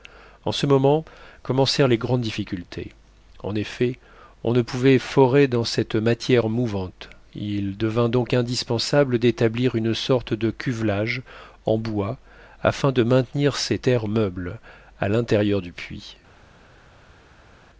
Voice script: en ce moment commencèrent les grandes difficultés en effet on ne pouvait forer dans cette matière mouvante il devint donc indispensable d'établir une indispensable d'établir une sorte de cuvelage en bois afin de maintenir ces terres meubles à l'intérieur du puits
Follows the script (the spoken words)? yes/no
no